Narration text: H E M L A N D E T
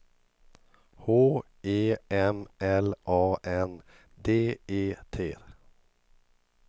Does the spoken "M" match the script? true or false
true